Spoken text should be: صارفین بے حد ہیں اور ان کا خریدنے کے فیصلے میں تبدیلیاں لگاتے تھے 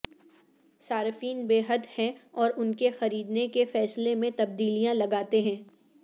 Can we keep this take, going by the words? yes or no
no